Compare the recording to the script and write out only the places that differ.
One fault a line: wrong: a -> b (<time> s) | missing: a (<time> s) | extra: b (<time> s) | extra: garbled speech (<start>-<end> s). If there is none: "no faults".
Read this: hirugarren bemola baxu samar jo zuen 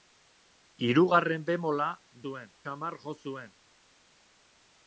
wrong: baxu -> zuen (2.2 s)